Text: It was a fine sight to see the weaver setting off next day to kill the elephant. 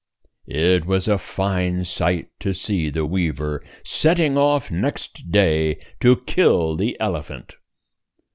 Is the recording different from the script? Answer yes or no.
no